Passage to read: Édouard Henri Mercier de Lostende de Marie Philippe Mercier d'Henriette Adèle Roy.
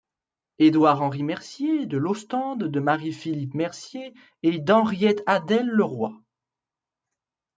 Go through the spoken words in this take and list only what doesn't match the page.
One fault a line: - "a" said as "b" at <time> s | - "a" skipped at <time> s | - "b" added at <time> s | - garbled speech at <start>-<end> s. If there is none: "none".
- "et" added at 4.4 s
- "Le" added at 5.7 s